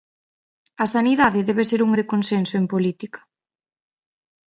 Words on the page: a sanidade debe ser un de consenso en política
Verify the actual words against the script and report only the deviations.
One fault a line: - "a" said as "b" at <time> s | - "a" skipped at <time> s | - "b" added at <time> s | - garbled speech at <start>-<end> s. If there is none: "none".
none